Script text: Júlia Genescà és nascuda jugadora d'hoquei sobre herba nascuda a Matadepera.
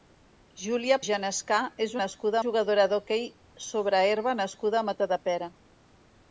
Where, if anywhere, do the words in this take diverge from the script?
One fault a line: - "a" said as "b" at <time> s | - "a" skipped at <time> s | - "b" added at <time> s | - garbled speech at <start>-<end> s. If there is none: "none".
none